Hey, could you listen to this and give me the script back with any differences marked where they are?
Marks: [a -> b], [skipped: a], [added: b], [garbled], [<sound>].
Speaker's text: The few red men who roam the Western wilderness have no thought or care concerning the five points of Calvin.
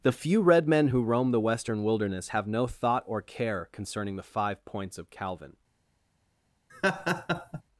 The few red men who roam the Western wilderness have no thought or care concerning the five points of Calvin. [laugh]